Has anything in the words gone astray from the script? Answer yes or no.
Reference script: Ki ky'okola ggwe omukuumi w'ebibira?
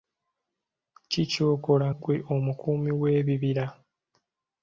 no